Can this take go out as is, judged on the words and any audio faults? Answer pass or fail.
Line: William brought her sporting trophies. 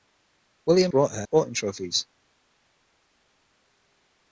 pass